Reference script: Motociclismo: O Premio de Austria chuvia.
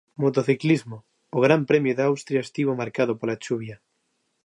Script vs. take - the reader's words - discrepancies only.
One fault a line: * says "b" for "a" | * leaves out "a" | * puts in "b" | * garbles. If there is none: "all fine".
* puts in "Gran"
* puts in "estivo marcado pola"